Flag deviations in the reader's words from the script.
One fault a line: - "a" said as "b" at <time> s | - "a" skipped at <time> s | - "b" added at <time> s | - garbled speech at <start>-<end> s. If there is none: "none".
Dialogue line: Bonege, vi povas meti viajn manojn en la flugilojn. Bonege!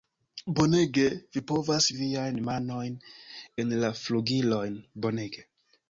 - "meti" skipped at 1.9 s